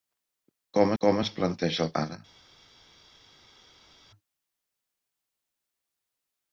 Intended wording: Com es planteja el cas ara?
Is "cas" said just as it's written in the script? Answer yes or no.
no